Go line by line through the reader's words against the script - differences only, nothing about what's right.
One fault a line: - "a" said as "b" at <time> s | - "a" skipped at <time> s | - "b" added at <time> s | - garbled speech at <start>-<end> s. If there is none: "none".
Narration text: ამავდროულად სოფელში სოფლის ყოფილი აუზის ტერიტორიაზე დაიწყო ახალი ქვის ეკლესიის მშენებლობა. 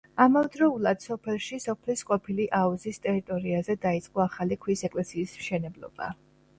none